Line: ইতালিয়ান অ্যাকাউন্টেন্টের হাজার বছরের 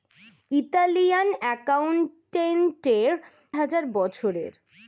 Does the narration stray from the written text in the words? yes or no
no